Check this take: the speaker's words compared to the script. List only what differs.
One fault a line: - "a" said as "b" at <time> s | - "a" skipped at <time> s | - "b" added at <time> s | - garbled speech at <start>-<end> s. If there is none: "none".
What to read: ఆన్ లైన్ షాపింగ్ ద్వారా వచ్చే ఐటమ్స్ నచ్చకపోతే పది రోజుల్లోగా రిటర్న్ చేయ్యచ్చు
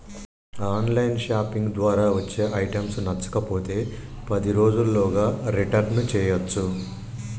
none